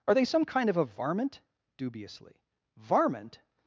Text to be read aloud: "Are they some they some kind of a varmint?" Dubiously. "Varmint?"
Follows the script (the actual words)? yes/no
no